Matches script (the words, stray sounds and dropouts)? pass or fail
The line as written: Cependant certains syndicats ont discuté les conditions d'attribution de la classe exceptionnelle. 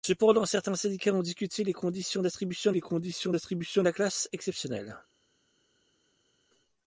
fail